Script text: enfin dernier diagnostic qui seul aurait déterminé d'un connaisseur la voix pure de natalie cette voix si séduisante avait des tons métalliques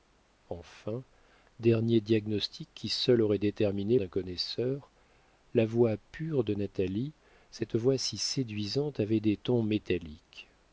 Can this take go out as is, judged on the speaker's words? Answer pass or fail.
pass